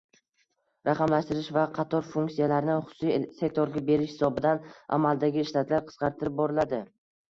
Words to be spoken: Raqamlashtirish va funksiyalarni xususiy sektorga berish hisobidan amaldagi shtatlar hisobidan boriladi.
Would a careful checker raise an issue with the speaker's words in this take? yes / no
yes